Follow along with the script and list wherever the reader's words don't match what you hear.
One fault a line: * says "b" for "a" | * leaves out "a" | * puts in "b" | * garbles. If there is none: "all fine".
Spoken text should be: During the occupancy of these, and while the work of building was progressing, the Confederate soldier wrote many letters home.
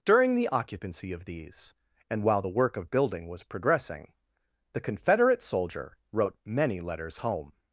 all fine